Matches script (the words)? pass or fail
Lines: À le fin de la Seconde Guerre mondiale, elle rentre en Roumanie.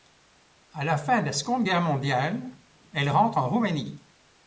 fail